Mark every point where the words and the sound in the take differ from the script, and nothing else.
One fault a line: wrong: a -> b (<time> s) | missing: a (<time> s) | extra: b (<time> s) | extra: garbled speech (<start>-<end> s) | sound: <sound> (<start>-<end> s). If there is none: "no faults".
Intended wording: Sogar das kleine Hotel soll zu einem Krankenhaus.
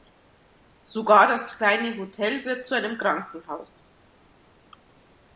wrong: soll -> wird (2.4 s)